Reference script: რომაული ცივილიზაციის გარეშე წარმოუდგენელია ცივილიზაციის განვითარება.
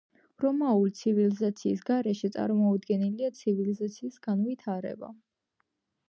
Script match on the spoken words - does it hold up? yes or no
yes